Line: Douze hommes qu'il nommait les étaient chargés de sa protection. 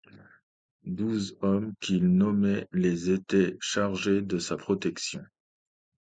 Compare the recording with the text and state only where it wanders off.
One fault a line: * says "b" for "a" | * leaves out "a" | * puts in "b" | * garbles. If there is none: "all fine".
all fine